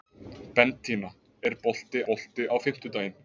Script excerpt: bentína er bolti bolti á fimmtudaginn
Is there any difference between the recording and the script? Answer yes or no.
no